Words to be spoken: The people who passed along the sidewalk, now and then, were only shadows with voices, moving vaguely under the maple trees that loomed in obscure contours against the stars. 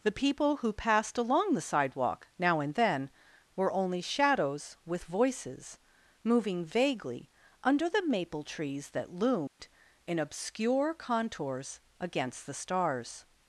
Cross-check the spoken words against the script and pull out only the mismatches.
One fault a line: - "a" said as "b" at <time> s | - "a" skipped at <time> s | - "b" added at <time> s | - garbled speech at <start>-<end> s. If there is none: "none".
none